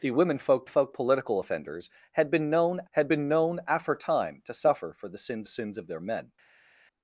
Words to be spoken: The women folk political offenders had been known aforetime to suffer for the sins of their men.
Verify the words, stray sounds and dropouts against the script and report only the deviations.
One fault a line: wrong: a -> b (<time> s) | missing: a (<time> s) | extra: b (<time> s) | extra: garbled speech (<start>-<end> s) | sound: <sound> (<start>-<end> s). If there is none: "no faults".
extra: folk (0.7 s)
extra: had been known (2.9 s)
extra: sins (5.5 s)